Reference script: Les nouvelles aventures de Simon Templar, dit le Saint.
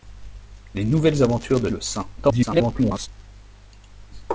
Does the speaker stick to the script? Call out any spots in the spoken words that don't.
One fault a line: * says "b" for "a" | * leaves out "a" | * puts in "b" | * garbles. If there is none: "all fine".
* leaves out "Simon Templar dit"
* garbles